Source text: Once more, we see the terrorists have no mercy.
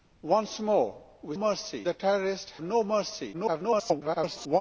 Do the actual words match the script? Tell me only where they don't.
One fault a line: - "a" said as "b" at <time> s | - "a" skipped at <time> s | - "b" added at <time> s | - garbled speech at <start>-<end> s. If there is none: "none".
- "see" said as "mercy" at 1.3 s
- "have" skipped at 2.5 s
- garbled speech at 3.3-4.6 s